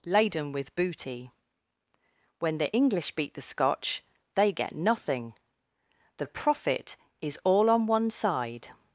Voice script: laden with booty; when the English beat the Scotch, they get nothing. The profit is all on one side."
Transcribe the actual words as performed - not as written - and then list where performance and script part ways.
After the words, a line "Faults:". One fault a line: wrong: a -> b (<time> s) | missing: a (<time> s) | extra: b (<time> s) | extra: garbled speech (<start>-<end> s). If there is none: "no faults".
laden with booty; when the English beat the Scotch, they get nothing. The profit is all on one side."
Faults:
no faults